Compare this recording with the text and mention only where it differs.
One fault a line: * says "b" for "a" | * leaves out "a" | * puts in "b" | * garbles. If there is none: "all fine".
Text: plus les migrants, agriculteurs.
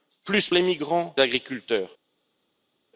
all fine